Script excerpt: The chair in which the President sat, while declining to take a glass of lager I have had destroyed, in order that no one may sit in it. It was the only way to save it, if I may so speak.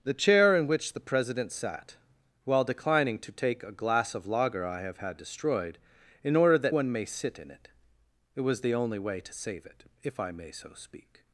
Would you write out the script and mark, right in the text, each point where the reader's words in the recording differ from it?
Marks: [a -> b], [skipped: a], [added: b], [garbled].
The chair in which the President sat, while declining to take a glass of lager I have had destroyed, in order that [skipped: no] one may sit in it. It was the only way to save it, if I may so speak.